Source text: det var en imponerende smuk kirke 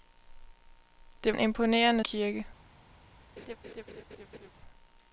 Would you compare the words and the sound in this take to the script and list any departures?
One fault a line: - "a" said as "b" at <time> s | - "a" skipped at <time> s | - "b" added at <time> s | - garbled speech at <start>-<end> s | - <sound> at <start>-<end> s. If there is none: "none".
- "var" skipped at 1.4 s
- "smuk" skipped at 2.0 s
- laugh at 3.4-4.5 s